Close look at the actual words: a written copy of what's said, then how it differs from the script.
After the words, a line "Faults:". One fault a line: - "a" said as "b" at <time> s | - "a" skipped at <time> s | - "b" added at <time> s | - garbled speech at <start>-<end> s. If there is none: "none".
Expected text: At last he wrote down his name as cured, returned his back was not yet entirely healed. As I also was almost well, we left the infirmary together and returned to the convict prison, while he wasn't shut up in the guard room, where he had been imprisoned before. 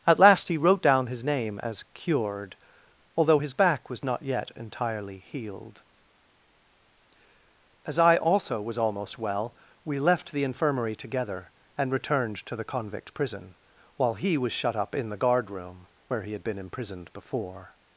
At last he wrote down his name as cured, although his back was not yet entirely healed. As I also was almost well, we left the infirmary together and returned to the convict prison, while he was shut up in the guard room, where he had been imprisoned before.
Faults:
- "returned" said as "although" at 3.1 s
- "wasn't" said as "was" at 14.4 s